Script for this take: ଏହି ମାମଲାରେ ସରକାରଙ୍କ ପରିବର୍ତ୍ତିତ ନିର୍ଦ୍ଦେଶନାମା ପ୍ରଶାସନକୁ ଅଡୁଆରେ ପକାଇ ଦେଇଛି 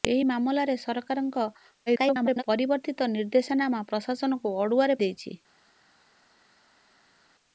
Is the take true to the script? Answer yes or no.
no